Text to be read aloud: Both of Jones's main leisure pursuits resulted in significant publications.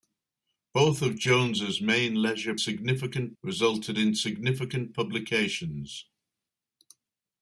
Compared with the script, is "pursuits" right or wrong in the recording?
wrong